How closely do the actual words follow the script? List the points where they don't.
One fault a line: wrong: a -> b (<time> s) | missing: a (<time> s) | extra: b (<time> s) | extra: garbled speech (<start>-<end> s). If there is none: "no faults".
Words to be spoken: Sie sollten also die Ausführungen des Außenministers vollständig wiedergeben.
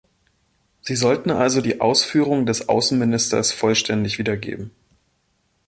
no faults